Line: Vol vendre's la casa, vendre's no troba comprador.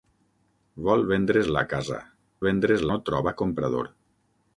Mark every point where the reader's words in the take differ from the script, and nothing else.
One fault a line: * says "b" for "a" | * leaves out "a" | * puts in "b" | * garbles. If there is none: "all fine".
all fine